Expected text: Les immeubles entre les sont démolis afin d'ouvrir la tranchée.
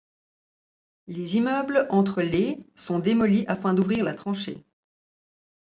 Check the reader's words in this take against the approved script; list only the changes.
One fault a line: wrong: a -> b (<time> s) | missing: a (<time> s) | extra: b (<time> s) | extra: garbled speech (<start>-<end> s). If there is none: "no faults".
no faults